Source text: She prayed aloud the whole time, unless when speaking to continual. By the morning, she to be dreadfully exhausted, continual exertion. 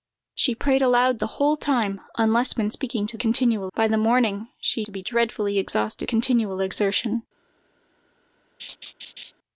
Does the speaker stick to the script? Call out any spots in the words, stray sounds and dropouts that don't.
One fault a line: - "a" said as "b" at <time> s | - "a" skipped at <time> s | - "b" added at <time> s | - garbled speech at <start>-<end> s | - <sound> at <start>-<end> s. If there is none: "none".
- laugh at 8.6-9.3 s